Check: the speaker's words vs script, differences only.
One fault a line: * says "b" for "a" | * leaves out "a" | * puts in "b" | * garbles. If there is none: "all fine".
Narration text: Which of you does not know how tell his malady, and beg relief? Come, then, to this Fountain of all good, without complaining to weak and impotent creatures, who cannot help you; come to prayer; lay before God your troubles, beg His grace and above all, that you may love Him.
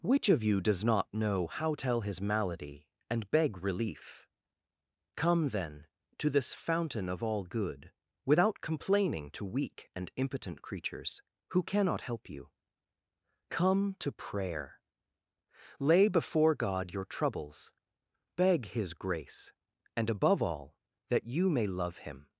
all fine